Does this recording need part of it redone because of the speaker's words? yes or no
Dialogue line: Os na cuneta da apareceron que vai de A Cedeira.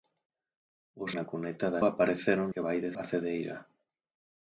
no